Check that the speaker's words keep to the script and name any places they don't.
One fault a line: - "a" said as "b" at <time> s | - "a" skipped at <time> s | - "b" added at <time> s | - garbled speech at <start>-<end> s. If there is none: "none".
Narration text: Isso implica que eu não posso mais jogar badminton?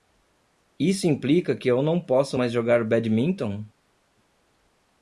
none